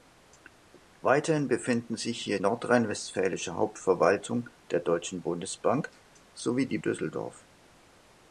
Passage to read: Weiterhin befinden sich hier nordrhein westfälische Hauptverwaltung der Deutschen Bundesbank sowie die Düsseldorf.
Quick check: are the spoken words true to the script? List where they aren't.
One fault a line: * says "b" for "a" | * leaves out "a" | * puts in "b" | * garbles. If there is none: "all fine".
all fine